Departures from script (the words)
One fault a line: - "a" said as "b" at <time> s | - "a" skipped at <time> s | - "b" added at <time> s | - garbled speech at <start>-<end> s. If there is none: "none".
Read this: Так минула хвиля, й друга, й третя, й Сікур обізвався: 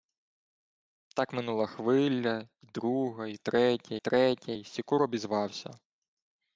- "третя" added at 4.0 s